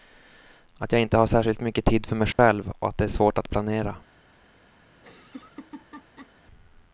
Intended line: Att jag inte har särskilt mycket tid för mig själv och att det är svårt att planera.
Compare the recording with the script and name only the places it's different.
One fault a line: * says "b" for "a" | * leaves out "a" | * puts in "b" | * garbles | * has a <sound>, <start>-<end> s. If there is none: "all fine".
* has a dropout, 2.3-2.4 s
* has a laugh, 4.9-6.3 s